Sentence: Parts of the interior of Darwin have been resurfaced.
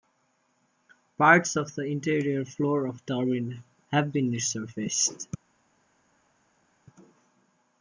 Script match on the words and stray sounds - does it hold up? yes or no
no